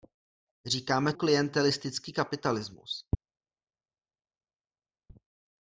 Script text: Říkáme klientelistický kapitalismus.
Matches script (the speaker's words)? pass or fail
pass